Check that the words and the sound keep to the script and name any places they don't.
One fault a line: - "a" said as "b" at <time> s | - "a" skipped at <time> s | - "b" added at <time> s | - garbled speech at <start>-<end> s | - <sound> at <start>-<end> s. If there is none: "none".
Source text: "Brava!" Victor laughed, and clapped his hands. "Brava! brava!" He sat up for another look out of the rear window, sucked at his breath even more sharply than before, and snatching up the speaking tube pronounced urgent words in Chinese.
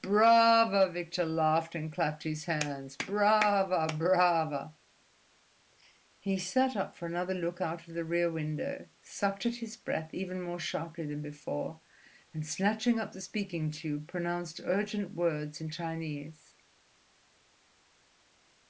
none